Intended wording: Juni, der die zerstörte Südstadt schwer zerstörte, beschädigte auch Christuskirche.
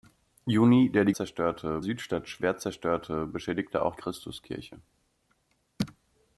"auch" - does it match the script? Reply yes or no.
yes